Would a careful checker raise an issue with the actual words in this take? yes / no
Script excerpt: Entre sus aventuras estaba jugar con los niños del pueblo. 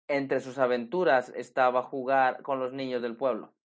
no